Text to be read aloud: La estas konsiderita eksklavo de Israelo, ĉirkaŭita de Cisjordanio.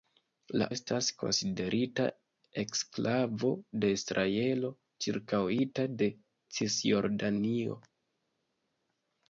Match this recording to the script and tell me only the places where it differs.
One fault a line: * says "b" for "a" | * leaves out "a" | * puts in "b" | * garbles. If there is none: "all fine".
all fine